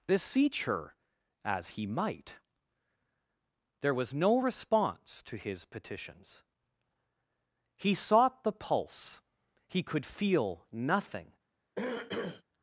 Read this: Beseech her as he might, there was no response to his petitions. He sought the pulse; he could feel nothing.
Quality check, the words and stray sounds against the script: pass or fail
fail